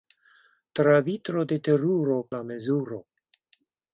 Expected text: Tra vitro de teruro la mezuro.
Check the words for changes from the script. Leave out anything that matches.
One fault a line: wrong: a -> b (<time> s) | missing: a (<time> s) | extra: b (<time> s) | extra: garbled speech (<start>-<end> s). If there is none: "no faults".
no faults